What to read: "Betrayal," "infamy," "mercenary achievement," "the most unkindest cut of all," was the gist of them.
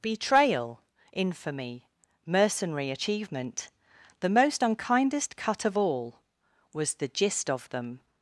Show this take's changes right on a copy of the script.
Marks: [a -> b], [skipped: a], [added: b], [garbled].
"Betrayal," "infamy," "mercenary achievement," "the most unkindest cut of all," was the gist of them.